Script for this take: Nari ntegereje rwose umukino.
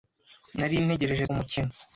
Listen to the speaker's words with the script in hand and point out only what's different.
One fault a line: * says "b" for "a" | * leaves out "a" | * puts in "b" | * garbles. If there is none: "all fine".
* leaves out "rwose"